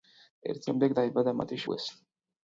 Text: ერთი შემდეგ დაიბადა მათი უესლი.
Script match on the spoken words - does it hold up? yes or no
yes